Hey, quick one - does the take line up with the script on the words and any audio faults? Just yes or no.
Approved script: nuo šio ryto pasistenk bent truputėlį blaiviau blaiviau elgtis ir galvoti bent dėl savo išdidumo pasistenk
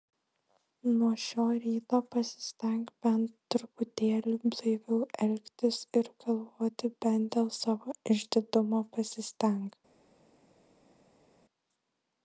no